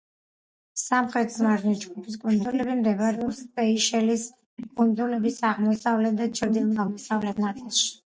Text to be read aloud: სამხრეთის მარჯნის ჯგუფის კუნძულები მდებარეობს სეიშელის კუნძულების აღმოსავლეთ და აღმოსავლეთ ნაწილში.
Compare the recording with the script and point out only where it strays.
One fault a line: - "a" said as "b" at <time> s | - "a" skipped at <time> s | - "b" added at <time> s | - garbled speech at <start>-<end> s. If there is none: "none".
- "ჩრდილო" added at 6.4 s